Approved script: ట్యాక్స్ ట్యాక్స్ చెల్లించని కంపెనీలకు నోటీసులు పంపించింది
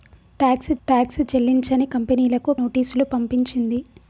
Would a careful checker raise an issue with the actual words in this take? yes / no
no